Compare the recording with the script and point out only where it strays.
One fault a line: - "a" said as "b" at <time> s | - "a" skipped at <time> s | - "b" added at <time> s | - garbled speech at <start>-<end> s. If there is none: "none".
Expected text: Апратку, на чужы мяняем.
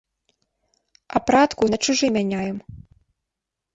none